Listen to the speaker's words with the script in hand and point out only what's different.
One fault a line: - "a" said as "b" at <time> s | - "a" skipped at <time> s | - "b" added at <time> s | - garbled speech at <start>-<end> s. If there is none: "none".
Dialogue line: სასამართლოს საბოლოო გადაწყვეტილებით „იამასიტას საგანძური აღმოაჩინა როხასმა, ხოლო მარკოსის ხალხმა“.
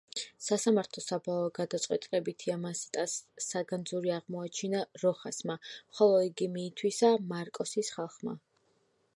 - "იგი მიითვისა" added at 6.3 s